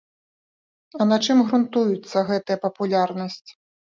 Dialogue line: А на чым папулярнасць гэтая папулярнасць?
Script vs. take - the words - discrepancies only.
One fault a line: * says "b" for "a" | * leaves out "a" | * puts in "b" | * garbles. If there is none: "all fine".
* says "грунтуецца" for "папулярнасць"